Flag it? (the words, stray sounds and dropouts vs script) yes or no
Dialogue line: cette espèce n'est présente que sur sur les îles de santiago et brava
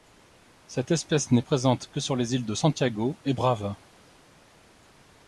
yes